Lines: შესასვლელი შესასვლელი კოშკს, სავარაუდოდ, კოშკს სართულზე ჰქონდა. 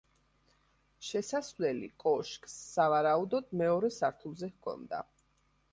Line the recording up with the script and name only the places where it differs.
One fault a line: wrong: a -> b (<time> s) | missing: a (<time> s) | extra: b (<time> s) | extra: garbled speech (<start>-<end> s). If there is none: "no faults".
missing: შესასვლელი (1.9 s)
wrong: კოშკს -> მეორე (3.6 s)